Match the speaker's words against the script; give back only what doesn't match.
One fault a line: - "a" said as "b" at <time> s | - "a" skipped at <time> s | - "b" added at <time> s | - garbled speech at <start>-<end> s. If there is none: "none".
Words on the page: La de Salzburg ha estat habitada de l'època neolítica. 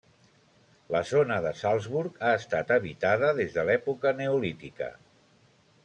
- "zona" added at 1.1 s
- "des" added at 3.4 s